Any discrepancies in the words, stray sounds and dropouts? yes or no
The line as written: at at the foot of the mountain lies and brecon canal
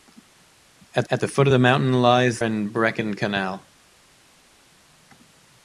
no